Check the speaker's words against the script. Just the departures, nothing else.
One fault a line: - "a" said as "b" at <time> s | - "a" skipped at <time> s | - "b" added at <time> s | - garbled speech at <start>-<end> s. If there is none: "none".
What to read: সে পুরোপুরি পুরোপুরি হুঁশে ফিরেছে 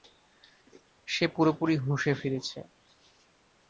- "পুরোপুরি" skipped at 1.8 s